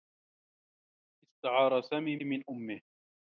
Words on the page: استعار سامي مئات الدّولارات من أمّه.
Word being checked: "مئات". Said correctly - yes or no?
no